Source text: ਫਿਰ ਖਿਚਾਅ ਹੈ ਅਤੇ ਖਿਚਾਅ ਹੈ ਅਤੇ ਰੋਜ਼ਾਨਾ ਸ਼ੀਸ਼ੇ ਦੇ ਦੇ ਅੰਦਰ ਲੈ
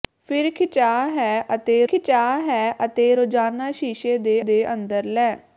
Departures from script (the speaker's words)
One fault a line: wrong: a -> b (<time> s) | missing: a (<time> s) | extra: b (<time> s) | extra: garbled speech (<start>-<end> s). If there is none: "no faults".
no faults